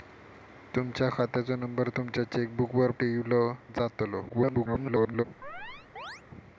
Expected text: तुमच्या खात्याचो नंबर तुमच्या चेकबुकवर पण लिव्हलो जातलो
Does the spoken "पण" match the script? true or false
false